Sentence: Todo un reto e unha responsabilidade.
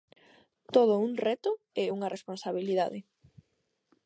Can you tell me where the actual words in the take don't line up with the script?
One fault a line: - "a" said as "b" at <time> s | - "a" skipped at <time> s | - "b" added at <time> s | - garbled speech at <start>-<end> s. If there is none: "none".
none